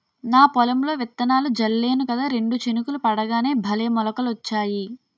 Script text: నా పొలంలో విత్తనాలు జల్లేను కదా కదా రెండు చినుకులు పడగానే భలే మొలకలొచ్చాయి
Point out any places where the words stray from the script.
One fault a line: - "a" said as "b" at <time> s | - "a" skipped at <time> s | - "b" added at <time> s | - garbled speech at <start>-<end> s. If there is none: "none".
- "కదా" skipped at 2.3 s